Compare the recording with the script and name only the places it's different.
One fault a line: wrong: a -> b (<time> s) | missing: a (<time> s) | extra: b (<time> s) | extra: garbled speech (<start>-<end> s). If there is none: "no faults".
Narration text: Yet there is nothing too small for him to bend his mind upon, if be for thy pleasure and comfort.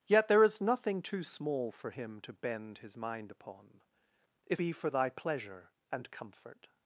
no faults